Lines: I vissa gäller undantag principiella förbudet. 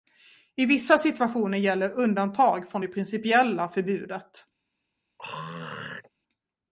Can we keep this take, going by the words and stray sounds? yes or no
no